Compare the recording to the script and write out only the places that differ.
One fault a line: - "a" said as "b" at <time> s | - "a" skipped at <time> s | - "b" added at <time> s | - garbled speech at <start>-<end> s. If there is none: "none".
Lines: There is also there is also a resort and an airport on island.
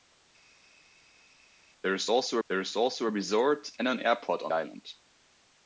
none